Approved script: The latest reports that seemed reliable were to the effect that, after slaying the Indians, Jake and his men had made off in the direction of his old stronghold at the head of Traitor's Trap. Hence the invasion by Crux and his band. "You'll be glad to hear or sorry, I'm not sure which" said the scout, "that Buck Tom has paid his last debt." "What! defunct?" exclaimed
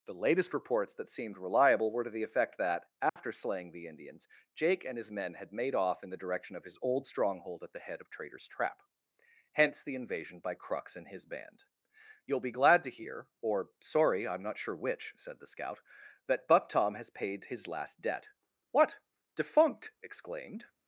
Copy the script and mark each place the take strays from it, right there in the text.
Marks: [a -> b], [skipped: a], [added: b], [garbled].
The latest reports that seemed reliable were to the effect that, after slaying the Indians, Jake and his men had made off in the direction of his old stronghold at the head of Traitor's Trap. Hence the invasion by Crux and his band. "You'll be glad to hear or sorry, I'm not sure which" said the scout, "that Buck Tom has paid his last debt." "What! defunct?" exclaimed